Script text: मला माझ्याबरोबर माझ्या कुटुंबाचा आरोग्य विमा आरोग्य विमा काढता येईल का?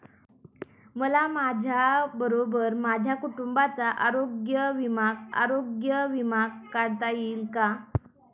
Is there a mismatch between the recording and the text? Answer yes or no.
no